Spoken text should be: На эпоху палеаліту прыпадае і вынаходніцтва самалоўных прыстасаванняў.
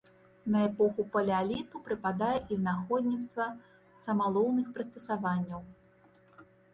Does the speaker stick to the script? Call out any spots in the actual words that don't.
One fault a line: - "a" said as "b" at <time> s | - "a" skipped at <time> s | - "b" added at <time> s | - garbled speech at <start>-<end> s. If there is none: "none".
none